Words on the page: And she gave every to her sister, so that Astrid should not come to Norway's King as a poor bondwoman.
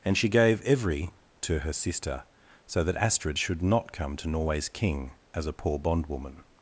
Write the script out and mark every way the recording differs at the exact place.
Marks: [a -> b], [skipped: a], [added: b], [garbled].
And she gave every to her sister, so that Astrid should not come to Norway's King as a poor bondwoman.